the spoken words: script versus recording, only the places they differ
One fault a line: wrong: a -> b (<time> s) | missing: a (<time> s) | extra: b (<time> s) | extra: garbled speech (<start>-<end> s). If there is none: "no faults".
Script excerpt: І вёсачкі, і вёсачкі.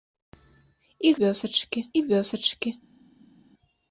no faults